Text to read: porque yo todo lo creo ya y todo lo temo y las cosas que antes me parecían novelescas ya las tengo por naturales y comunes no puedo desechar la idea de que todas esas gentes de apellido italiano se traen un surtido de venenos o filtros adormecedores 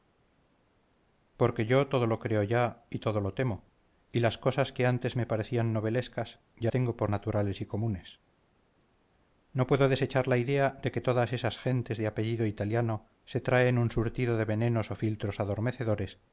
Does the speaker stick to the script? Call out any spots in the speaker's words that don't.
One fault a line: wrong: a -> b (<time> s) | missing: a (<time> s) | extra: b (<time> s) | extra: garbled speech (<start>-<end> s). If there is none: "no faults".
missing: las (6.7 s)